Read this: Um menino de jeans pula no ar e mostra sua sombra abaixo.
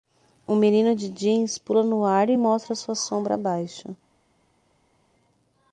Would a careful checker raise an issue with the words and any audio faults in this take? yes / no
no